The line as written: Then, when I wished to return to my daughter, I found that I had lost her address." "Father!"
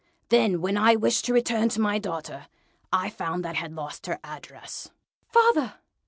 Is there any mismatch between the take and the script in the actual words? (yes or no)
yes